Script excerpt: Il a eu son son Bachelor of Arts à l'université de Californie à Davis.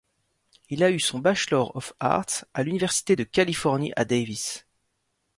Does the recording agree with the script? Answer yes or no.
no